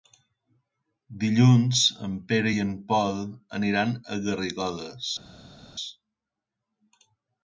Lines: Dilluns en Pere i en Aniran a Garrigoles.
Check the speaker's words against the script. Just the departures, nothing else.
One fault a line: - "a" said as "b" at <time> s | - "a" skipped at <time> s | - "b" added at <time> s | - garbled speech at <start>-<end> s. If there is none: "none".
- "Pol" added at 2.9 s